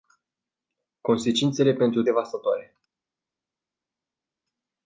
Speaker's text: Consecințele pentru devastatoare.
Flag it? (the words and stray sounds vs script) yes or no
no